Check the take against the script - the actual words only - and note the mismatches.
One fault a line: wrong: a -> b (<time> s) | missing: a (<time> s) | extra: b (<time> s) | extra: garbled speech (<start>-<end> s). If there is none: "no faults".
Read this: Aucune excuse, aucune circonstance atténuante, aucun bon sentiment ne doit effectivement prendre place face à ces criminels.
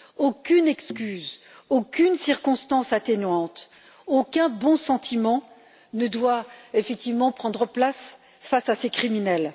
no faults